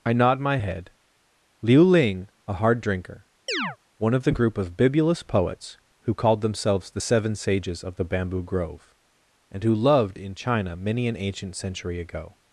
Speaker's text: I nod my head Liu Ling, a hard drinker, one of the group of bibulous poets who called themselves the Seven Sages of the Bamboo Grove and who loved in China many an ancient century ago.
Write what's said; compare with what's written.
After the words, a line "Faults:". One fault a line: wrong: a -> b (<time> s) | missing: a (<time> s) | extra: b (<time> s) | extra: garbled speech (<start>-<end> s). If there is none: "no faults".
I nod my head Liu Ling, a hard drinker, one of the group of bibulous poets who called themselves the Seven Sages of the Bamboo Grove and who loved in China many an ancient century ago.
Faults:
no faults